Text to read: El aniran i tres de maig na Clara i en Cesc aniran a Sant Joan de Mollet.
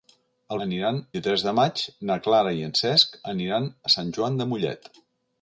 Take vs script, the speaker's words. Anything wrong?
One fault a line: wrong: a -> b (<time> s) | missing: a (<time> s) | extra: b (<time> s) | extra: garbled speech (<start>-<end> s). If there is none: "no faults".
no faults